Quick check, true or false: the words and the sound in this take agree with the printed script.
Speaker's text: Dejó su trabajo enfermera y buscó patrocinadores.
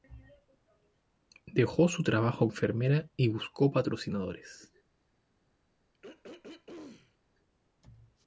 false